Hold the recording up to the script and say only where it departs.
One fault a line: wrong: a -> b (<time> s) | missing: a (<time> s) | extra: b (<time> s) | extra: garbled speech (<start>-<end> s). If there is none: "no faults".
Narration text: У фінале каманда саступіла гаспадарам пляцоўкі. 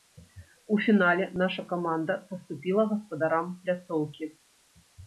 extra: наша (1.4 s)